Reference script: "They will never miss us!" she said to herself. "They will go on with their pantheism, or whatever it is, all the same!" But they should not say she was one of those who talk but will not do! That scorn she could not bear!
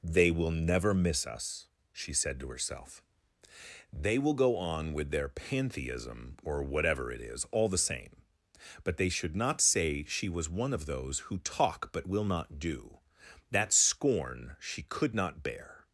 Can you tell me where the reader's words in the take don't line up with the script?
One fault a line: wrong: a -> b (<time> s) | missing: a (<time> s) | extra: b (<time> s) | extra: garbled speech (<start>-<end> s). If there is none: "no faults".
no faults